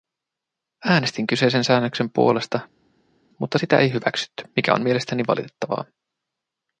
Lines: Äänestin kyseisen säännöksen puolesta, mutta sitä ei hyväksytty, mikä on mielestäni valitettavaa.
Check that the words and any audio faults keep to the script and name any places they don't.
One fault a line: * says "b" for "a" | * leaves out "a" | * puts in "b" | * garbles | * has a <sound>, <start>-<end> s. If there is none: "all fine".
all fine